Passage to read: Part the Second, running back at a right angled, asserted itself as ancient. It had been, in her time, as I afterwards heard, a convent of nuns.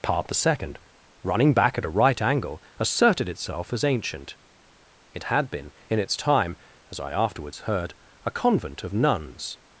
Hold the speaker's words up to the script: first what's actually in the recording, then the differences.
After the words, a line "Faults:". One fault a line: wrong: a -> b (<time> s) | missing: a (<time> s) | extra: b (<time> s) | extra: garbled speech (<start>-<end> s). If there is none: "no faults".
Part the Second, running back at a right angle, asserted itself as ancient. It had been, in its time, as I afterwards heard, a convent of nuns.
Faults:
wrong: angled -> angle (2.2 s)
wrong: her -> its (6.0 s)